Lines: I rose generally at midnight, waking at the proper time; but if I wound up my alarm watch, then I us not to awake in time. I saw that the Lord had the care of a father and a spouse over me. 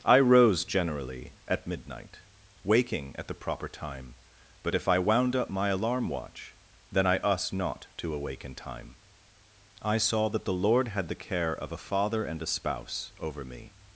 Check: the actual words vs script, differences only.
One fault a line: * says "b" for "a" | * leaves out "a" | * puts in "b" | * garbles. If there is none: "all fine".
all fine